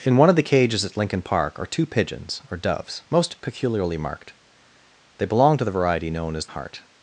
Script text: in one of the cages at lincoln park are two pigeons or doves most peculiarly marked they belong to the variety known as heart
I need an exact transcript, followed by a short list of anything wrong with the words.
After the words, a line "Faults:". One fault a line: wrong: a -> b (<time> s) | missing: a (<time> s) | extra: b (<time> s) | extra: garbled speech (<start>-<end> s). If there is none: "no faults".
in one of the cages at lincoln park are two pigeons or doves most peculiarly marked they belong to the variety known as heart
Faults:
no faults